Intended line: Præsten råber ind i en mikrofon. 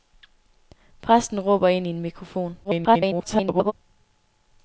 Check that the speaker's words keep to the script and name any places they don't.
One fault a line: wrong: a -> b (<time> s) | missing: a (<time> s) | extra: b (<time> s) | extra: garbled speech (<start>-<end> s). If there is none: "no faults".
extra: garbled speech (2.6-3.7 s)